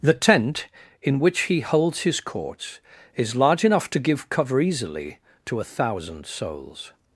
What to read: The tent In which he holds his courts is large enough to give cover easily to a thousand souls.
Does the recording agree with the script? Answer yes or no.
yes